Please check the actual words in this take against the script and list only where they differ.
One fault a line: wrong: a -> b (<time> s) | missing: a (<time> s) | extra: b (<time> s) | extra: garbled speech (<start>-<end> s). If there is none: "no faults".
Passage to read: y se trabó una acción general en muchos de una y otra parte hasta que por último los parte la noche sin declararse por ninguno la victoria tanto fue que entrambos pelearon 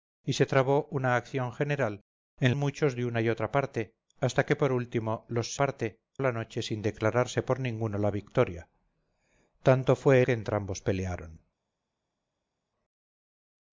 no faults